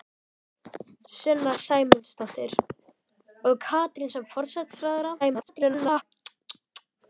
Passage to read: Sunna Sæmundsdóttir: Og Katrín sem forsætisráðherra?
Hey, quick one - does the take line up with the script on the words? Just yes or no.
no